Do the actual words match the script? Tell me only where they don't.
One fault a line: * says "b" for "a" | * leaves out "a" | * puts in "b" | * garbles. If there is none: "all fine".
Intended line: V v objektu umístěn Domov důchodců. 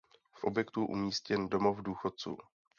all fine